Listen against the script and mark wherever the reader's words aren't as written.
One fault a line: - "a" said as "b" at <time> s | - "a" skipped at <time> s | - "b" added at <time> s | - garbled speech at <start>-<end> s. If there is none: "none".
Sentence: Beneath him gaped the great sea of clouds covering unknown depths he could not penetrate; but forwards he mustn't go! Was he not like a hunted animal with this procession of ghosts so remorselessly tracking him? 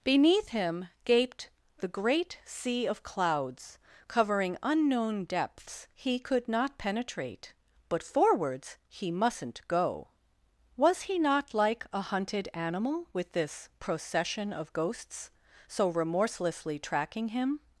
none